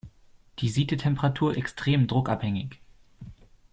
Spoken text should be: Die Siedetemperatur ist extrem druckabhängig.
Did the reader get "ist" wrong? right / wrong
wrong